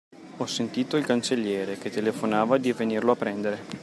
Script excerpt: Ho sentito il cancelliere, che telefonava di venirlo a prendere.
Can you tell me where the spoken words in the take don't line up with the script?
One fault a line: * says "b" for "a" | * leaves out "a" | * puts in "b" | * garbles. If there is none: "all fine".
all fine